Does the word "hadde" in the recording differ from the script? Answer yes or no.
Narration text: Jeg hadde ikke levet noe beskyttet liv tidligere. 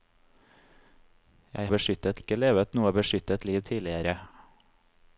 yes